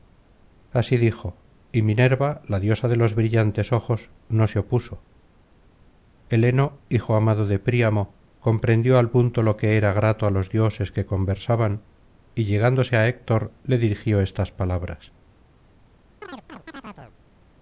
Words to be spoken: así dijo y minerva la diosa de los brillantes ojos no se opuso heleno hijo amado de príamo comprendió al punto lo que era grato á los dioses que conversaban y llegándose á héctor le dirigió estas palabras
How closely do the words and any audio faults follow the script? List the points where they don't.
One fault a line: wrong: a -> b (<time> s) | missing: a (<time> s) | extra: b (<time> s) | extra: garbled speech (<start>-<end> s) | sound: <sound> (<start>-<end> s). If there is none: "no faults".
sound: chirp (16.2-17.2 s)